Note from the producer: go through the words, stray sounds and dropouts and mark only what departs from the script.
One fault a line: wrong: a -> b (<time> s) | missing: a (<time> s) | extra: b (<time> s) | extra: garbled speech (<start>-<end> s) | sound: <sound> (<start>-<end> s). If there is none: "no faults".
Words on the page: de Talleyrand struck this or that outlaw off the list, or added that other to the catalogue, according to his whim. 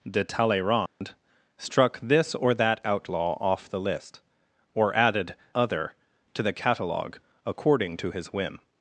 sound: dropout (0.9-1.0 s)
missing: that (5.3 s)